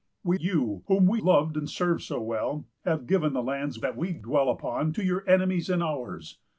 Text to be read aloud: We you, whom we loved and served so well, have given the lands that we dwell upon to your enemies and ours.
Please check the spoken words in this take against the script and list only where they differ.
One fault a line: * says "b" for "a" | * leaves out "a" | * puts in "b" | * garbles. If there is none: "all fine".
all fine